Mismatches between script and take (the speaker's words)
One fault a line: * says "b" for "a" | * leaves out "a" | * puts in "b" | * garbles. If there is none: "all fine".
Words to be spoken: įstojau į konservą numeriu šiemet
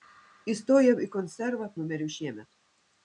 all fine